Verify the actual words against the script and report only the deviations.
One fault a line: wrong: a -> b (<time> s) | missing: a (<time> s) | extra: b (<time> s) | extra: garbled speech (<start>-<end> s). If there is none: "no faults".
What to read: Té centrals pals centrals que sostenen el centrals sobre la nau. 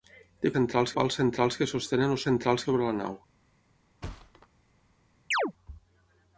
no faults